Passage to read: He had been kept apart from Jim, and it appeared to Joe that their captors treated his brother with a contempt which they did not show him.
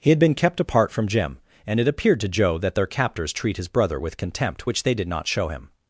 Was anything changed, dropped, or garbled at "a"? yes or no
yes